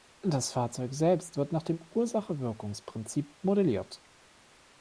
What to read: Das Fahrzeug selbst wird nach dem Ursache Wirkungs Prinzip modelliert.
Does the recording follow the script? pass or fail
pass